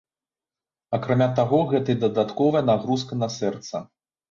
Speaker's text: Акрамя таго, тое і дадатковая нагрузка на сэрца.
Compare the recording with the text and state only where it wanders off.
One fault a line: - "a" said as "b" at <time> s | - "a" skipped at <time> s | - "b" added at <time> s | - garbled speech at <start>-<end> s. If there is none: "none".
- "тое" said as "гэта" at 1.8 s